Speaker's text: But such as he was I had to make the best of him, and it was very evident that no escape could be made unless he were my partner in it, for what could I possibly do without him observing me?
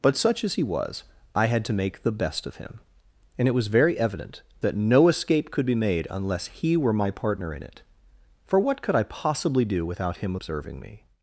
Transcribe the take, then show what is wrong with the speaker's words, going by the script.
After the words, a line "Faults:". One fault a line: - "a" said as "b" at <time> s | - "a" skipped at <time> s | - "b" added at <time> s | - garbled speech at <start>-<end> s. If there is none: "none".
But such as he was I had to make the best of him, and it was very evident that no escape could be made unless he were my partner in it, for what could I possibly do without him observing me?
Faults:
none